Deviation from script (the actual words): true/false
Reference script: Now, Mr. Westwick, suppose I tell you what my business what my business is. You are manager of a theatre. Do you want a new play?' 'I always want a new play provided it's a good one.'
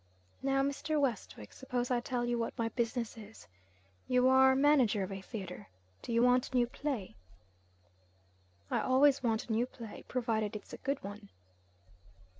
true